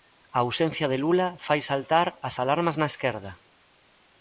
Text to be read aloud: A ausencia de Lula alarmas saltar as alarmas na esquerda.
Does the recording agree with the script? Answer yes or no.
no